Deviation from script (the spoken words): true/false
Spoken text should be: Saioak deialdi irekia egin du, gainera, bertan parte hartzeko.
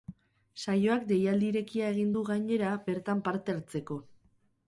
false